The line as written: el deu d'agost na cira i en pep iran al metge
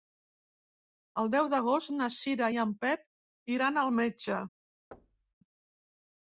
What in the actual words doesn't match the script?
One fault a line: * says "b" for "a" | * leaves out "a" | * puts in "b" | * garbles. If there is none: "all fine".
all fine